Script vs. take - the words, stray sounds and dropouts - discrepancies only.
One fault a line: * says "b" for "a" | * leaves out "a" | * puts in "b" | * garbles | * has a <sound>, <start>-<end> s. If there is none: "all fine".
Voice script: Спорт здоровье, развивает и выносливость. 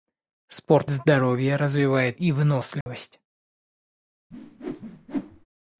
* has a dropout, 2.8-2.9 s
* has a whoosh, 4.3-5.5 s